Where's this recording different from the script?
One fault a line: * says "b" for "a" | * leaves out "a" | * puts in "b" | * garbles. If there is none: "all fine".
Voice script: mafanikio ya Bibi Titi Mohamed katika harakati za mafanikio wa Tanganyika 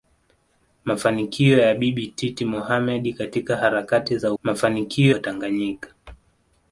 all fine